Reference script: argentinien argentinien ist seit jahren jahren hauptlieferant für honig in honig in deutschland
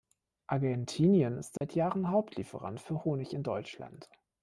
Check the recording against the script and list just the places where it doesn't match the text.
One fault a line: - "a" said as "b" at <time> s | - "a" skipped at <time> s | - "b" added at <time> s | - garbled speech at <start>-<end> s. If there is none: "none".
- "argentinien" skipped at 1.4 s
- "jahren" skipped at 2.1 s
- "honig in" skipped at 3.4 s